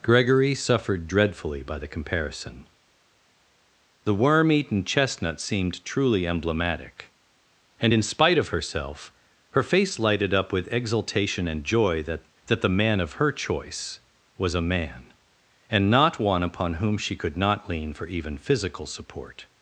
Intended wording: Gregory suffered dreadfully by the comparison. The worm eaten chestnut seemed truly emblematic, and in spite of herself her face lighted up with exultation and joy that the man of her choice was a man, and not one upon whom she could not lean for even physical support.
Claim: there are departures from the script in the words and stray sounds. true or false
true